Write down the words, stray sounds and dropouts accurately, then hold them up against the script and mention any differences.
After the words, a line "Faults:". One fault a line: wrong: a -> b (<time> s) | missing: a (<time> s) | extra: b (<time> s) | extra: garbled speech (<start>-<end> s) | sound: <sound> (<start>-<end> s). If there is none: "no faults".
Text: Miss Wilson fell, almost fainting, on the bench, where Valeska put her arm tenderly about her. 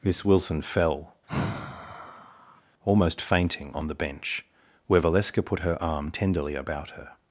Miss Wilson fell, almost fainting, on the bench, where Valeska put her arm tenderly about her.
Faults:
sound: sigh (1.3-2.6 s)